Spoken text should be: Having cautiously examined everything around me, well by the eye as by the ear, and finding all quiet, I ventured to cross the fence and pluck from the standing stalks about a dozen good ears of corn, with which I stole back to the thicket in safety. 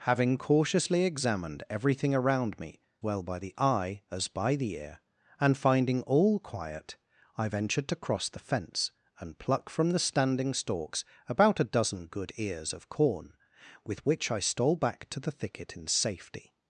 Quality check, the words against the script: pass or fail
pass